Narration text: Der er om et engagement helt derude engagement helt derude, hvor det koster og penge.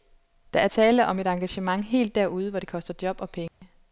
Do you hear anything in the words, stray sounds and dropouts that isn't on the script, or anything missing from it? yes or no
yes